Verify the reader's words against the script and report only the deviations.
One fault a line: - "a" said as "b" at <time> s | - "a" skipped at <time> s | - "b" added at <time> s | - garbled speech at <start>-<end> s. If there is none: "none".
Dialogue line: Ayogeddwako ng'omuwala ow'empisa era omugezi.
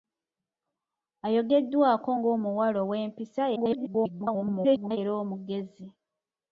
- garbled speech at 3.6-5.0 s